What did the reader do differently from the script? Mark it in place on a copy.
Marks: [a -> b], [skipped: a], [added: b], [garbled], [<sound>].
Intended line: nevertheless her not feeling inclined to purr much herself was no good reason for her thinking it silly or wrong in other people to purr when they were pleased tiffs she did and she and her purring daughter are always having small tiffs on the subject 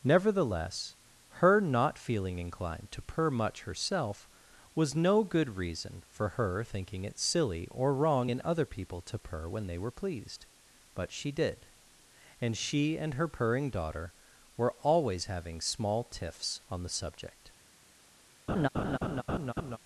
nevertheless her not feeling inclined to purr much herself was no good reason for her thinking it silly or wrong in other people to purr when they were pleased [tiffs -> but] she did and she and her purring daughter [are -> were] always having small tiffs on the subject [laugh]